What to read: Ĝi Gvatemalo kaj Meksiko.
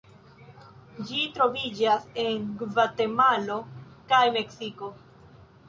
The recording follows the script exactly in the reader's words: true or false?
false